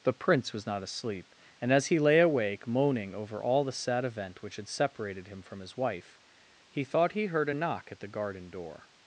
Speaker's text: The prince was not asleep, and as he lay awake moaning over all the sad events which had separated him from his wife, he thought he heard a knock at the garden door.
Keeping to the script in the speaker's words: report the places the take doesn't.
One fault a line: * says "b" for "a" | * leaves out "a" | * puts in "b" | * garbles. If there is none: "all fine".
* says "event" for "events"